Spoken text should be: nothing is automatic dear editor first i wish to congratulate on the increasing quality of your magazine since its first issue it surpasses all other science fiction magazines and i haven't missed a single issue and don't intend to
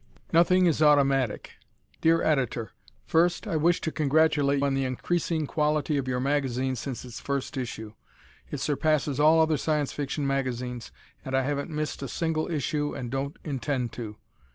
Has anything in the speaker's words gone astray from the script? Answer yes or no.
no